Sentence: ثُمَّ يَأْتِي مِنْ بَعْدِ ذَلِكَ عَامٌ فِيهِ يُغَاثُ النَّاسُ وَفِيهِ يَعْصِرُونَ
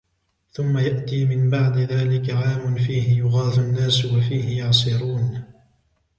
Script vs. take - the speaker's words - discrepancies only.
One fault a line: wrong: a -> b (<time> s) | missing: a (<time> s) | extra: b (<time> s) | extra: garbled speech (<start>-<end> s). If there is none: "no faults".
no faults